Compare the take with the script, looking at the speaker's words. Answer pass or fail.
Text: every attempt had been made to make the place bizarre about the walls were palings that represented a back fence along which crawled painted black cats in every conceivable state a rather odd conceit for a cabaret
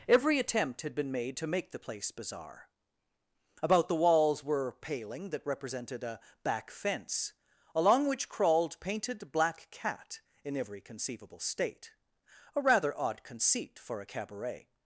fail